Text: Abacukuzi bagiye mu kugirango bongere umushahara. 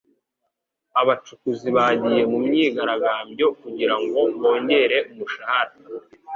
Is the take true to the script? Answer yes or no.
no